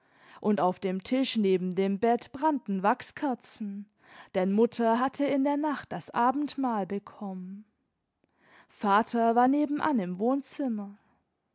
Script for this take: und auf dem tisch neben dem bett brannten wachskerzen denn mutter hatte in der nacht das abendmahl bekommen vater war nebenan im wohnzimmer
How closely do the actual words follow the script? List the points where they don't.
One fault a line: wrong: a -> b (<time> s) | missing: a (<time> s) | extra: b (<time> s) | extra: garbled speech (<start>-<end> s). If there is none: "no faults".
no faults